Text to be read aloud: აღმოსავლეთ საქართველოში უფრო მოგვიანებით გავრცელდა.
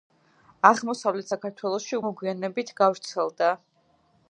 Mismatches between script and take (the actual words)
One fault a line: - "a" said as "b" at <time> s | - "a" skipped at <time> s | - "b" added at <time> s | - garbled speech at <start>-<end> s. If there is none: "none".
- "უფრო" skipped at 2.0 s